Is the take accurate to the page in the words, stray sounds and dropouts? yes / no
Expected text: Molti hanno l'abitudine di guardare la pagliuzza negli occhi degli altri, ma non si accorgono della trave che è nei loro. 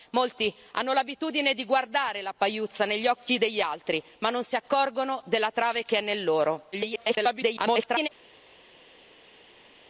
no